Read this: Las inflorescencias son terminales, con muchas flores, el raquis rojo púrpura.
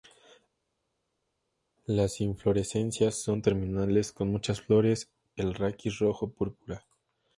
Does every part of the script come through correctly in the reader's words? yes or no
yes